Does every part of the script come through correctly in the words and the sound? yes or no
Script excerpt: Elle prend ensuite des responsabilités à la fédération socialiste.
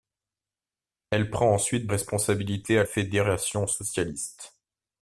no